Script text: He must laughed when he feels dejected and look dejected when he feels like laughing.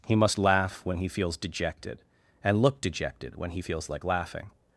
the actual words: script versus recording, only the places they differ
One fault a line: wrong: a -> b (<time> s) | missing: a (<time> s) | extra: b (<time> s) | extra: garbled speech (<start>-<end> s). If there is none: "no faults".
wrong: laughed -> laugh (0.4 s)